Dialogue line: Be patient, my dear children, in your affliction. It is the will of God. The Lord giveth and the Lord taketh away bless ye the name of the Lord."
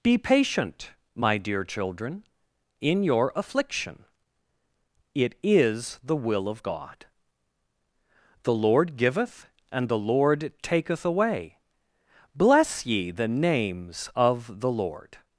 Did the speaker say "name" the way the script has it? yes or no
no